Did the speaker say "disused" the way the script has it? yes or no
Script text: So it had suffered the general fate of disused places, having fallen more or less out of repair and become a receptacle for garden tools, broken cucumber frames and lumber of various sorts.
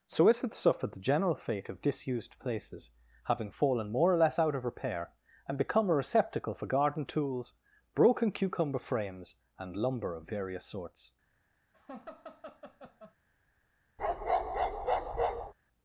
yes